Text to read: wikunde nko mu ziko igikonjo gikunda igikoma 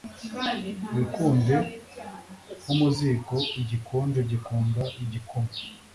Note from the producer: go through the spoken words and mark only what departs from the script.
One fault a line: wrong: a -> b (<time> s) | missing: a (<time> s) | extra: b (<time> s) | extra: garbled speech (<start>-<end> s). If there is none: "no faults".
no faults